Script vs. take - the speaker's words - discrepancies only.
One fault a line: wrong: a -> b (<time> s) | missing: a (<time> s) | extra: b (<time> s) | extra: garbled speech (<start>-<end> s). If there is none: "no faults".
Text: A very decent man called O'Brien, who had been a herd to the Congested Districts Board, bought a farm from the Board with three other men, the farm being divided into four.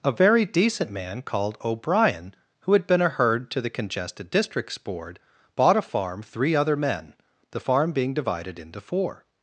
missing: from the Board with (6.2 s)